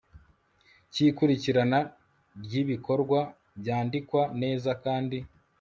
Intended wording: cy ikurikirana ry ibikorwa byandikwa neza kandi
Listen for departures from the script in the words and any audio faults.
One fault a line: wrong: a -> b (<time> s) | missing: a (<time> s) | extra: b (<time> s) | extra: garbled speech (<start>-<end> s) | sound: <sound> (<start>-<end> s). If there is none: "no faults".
no faults